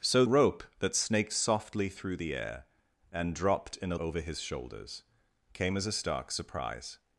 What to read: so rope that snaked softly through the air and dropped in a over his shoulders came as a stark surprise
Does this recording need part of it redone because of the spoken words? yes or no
no